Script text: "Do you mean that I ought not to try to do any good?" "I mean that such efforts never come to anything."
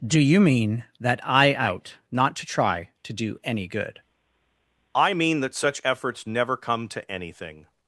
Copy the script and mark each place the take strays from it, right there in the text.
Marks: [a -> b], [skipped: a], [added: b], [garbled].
"Do you mean that I [ought -> out] not to try to do any good?" "I mean that such efforts never come to anything."